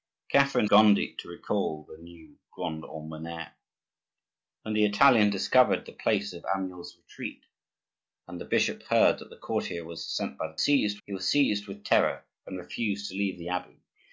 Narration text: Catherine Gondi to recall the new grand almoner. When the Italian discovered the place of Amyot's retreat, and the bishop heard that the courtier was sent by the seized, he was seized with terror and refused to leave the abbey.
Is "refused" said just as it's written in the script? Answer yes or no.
yes